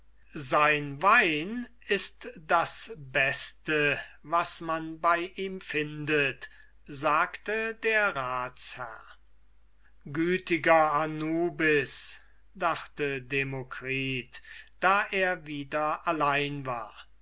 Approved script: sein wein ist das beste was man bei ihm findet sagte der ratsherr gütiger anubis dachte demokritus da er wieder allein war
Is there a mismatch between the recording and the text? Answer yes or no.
no